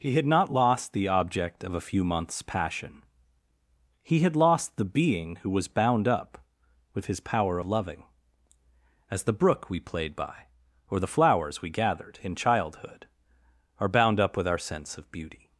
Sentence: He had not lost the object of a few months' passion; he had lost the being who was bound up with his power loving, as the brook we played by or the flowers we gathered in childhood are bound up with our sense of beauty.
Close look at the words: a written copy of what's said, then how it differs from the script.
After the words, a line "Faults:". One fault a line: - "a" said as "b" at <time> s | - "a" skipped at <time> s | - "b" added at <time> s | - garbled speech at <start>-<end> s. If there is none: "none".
He had not lost the object of a few months' passion; he had lost the being who was bound up with his power loving, as the brook we played by or the flowers we gathered in childhood are bound up with our sense of beauty.
Faults:
none